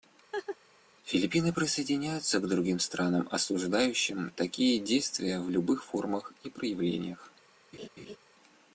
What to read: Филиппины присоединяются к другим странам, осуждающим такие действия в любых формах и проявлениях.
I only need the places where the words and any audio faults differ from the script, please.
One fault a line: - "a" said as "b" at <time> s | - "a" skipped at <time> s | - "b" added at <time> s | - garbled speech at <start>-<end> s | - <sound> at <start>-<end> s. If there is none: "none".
- laugh at 0.3-0.6 s
- laugh at 7.7-8.2 s